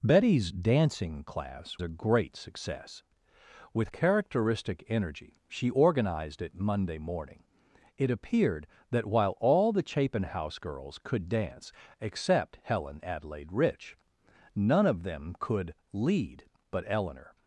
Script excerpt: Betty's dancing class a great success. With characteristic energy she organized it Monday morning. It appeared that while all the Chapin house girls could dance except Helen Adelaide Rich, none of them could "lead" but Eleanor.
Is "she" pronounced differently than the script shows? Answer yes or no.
no